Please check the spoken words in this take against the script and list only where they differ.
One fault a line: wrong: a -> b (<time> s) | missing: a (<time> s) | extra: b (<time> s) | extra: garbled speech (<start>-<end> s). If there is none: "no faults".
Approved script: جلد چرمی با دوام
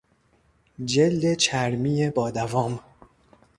no faults